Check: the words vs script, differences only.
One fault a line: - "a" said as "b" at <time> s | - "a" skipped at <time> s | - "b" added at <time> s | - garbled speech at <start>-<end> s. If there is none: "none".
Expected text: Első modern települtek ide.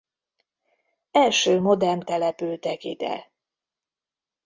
none